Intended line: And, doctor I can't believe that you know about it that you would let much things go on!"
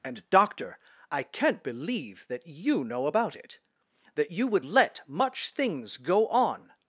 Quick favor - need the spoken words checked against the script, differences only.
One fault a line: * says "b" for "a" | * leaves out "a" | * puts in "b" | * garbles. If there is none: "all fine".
all fine